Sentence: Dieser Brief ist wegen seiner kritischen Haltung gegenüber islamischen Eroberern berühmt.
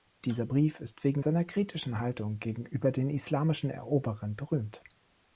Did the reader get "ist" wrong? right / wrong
right